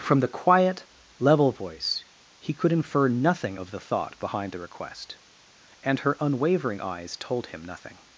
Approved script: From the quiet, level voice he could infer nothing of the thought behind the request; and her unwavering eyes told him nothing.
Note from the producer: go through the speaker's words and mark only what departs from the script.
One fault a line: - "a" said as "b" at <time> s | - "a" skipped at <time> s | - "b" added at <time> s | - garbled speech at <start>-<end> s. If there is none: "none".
none